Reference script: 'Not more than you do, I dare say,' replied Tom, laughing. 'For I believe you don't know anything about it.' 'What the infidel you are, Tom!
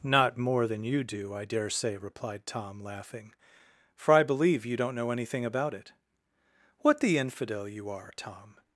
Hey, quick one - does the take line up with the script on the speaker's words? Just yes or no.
yes